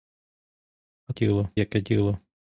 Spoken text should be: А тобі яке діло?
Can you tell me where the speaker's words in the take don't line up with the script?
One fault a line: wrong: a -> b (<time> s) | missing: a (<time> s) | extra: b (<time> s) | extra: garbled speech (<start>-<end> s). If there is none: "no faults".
wrong: тобі -> діло (1.1 s)